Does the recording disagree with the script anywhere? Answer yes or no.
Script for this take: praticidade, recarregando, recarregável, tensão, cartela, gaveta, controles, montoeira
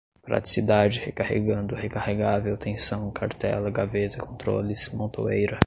no